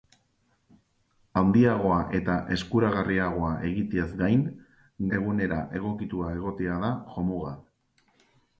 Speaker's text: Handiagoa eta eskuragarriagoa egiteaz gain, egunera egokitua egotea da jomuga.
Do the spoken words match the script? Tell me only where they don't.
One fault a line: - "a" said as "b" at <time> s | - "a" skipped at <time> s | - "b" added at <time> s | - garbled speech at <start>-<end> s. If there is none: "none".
none